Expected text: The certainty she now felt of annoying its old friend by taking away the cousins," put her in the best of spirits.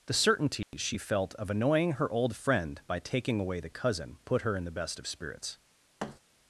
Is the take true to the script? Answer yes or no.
no